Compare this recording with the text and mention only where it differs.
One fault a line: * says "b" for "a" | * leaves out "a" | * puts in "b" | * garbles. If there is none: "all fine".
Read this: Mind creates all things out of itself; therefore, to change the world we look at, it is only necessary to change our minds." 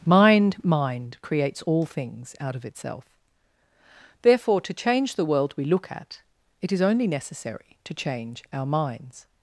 * puts in "mind"